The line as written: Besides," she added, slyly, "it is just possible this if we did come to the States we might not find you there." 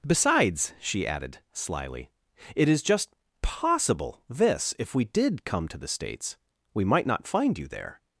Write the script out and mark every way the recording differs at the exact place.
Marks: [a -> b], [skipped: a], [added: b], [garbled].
Besides," she added, slyly, "it is just possible this if we did come to the States we might not find you there."